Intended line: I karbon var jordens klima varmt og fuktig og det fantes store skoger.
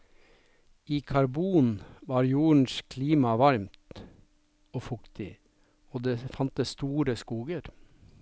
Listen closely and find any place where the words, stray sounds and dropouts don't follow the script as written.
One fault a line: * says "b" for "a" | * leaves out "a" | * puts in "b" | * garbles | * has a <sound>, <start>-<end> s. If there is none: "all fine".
all fine